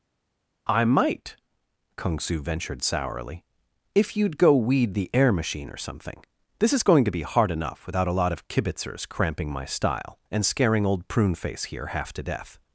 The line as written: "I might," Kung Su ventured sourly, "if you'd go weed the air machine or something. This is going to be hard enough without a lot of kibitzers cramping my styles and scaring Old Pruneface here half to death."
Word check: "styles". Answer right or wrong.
wrong